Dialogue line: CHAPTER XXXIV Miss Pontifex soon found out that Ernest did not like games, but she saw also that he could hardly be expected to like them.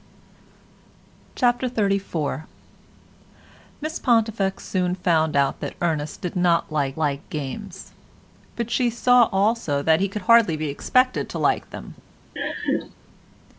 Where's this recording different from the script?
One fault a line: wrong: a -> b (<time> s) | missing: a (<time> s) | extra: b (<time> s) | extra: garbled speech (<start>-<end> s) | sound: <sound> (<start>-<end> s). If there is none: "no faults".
extra: like (7.0 s)
sound: laugh (12.4-12.9 s)